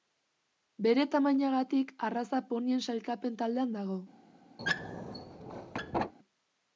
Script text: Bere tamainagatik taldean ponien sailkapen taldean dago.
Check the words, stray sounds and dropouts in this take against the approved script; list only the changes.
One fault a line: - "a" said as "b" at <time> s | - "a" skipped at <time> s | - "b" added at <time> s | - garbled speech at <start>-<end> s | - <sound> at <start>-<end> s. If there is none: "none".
- "taldean" said as "arraza" at 2.1 s
- squeak at 4.6-6.1 s